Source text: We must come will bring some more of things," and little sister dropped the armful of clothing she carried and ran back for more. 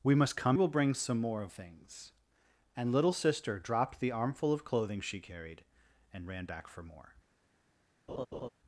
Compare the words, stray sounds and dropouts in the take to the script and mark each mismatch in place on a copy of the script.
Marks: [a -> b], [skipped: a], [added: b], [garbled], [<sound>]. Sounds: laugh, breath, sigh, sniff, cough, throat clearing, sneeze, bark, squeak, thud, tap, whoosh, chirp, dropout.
We must come will bring some more of things," and little sister dropped the armful of clothing she carried and ran back for more. [laugh]